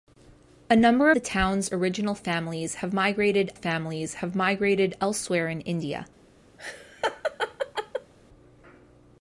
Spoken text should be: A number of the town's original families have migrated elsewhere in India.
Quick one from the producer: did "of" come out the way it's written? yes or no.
no